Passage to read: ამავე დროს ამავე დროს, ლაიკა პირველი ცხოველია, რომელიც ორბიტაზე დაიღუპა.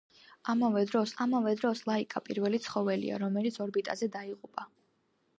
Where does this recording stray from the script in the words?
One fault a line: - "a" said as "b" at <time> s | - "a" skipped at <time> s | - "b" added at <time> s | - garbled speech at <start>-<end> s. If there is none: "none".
none